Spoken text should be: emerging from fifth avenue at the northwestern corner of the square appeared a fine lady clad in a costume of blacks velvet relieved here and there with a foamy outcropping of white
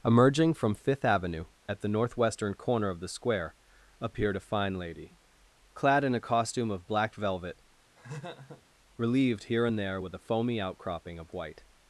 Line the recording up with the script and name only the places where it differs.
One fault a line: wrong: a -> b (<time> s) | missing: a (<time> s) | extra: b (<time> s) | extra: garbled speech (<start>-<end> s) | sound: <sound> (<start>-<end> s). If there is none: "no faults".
wrong: blacks -> black (6.9 s)
sound: laugh (8.0-8.6 s)